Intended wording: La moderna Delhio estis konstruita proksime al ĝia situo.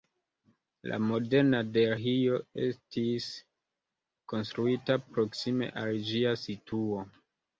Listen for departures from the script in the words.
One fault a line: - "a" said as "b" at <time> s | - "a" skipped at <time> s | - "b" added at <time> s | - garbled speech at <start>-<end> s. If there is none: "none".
none